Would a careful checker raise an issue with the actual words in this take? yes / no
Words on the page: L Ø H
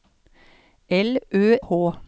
no